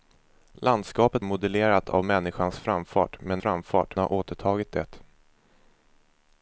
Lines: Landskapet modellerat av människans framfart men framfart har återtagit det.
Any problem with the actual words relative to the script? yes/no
no